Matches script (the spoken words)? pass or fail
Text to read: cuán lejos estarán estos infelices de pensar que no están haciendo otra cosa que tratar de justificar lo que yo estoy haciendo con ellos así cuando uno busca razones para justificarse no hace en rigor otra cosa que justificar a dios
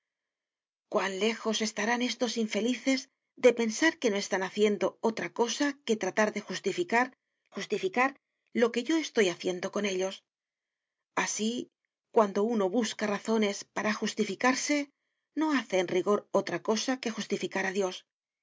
fail